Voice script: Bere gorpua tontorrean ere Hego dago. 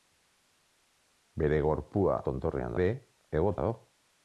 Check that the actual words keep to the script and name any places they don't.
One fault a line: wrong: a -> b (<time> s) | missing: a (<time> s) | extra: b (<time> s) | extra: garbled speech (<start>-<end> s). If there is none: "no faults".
no faults